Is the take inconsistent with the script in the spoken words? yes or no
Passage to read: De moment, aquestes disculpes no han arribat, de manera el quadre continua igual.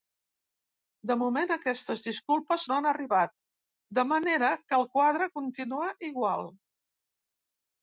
yes